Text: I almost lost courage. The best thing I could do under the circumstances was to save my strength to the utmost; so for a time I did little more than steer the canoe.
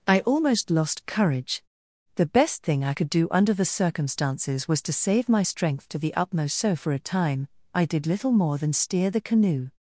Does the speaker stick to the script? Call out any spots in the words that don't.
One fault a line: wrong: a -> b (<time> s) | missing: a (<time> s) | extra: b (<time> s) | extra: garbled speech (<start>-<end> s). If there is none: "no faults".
no faults